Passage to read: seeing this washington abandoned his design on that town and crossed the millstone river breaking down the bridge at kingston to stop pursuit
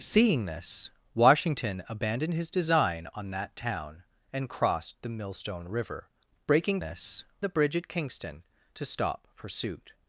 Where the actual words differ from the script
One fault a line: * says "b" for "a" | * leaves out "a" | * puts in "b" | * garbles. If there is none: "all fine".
* says "this" for "down"